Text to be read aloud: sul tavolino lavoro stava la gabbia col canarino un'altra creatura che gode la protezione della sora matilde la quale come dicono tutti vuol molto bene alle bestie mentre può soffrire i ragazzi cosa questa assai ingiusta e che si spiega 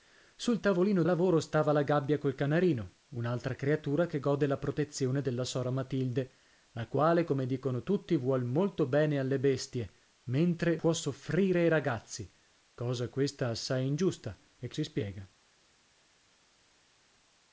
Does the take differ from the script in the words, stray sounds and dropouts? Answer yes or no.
no